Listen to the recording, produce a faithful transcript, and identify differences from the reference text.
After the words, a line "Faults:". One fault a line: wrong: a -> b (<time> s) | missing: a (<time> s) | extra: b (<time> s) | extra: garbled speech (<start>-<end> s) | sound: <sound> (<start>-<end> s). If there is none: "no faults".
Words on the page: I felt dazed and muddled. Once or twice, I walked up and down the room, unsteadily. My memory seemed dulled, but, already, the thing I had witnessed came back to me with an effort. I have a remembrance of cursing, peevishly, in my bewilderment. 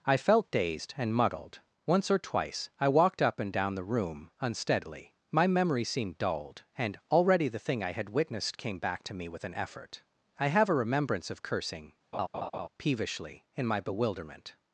I felt dazed and muddled. Once or twice, I walked up and down the room, unsteadily. My memory seemed dulled, and, already, the thing I had witnessed came back to me with an effort. I have a remembrance of cursing, peevishly, in my bewilderment.
Faults:
wrong: but -> and (6.8 s)
sound: laugh (12.1-12.7 s)